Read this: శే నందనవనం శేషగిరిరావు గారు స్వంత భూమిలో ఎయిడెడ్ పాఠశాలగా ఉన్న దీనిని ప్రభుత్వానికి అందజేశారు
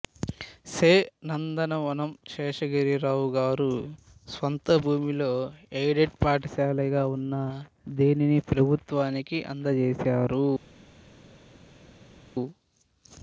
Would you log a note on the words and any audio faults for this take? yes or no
no